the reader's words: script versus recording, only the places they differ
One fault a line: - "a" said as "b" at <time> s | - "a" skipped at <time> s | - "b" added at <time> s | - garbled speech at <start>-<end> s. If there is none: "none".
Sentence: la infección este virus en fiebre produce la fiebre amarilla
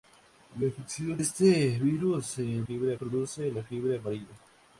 none